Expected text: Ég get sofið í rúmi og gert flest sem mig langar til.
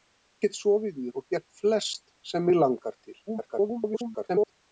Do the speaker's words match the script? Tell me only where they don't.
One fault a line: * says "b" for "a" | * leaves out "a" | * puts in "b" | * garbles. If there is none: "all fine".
* leaves out "rúmi"
* garbles